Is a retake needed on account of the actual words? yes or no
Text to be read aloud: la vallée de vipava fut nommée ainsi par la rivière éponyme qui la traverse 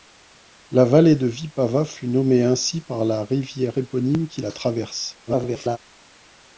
yes